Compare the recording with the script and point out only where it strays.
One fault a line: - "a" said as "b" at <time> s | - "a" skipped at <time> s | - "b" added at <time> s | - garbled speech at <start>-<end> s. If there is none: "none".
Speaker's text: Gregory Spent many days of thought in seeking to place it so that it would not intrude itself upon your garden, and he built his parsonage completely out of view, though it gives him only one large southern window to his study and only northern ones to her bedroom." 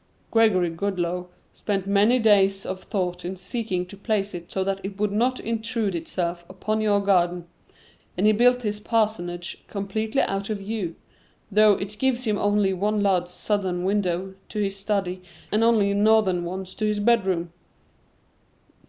- "Goodloe" added at 0.7 s
- "her" said as "his" at 16.9 s